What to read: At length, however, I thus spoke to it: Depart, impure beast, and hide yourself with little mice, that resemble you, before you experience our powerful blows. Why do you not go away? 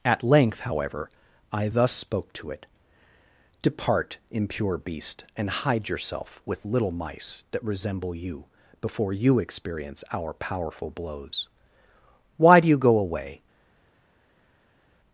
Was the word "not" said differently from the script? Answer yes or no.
yes